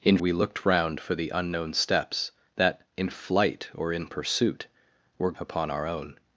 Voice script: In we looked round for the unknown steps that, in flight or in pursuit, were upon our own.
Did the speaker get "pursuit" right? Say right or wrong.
right